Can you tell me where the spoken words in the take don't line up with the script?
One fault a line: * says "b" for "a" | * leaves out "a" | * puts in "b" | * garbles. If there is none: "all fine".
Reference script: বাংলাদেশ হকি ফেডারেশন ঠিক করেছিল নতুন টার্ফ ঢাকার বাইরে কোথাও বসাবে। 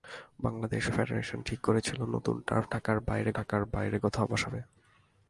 * leaves out "হকি"
* puts in "ঢাকার বাইরে"